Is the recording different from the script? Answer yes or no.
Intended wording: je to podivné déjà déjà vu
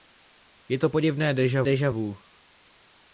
no